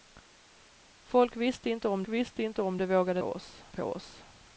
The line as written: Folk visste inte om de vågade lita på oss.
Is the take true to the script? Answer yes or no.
no